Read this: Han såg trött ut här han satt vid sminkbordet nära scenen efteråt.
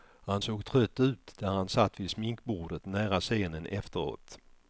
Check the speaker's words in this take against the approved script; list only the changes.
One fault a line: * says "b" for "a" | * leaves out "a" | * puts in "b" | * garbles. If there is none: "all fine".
* says "där" for "här"